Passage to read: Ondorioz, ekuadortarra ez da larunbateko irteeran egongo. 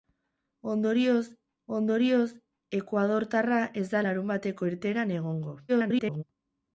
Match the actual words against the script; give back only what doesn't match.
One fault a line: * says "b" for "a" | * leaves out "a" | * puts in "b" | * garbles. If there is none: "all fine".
* puts in "ondorioz"
* garbles